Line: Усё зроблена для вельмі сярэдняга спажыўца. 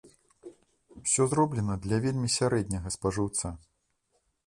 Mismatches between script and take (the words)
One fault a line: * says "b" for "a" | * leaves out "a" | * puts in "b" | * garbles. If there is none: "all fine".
all fine